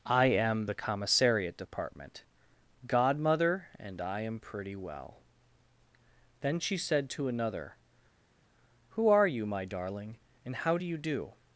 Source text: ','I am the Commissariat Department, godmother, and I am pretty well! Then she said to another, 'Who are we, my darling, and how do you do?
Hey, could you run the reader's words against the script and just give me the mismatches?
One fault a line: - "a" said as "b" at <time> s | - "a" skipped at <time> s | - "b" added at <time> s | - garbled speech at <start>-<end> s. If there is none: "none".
- "we" said as "you" at 9.3 s